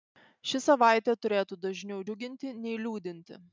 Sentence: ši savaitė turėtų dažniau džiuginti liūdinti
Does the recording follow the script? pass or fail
fail